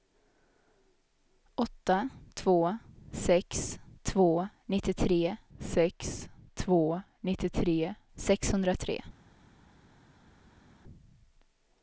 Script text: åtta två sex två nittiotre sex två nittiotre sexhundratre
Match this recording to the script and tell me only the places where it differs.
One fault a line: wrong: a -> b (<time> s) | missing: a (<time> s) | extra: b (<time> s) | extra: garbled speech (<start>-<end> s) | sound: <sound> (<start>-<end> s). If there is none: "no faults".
no faults